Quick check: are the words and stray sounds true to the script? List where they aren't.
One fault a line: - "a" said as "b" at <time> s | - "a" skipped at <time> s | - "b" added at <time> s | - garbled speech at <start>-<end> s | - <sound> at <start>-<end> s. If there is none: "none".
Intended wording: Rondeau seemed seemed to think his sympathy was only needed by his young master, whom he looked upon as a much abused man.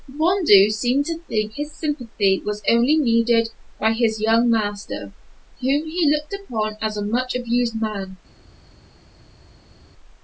- "seemed" skipped at 1.1 s